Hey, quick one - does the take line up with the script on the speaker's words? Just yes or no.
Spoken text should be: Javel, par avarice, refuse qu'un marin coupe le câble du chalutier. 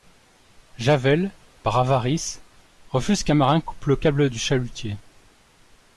yes